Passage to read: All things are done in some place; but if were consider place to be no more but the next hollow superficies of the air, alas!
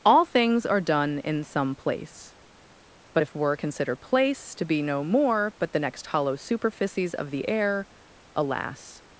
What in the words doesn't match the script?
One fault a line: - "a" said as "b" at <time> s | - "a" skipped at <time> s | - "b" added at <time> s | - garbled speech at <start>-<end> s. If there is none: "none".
none